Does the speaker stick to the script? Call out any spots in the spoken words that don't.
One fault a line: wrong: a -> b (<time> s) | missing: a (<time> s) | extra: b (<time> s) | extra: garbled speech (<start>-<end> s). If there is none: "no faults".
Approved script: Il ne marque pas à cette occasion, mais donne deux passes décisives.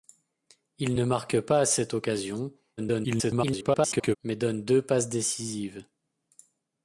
extra: garbled speech (2.8-4.2 s)